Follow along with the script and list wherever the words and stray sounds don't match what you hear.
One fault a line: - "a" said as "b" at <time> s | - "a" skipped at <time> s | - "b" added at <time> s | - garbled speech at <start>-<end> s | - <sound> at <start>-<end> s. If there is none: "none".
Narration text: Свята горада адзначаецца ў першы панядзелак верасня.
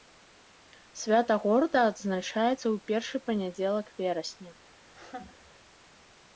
- laugh at 4.9-5.5 s